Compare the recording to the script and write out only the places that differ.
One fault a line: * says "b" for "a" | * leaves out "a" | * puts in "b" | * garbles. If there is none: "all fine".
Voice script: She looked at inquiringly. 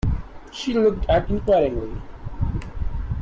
all fine